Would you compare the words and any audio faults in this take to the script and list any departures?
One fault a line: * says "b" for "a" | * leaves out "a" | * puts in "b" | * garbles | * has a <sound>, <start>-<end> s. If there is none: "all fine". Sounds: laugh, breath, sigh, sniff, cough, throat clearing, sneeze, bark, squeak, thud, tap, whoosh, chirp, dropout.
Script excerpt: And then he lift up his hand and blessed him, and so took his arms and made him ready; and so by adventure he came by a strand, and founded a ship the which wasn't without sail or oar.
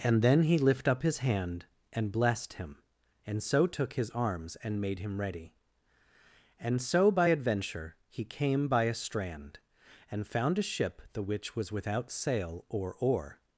* says "found" for "founded"
* says "was" for "wasn't"